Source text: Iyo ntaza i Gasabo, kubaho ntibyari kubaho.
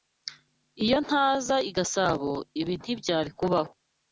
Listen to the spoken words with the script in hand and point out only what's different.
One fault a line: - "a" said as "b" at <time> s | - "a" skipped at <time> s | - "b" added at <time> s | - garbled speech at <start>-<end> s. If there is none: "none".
- "kubaho" said as "ibi" at 2.6 s